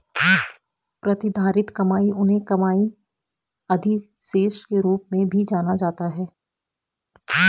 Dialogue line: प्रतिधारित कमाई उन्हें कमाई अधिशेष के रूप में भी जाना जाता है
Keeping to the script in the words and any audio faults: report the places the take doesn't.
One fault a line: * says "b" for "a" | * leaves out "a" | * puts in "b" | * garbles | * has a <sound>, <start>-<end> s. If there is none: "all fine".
all fine